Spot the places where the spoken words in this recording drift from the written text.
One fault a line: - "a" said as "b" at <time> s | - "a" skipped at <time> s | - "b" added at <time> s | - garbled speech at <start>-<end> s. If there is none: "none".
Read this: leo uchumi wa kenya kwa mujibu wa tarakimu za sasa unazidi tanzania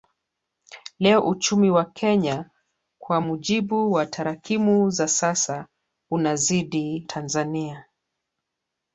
none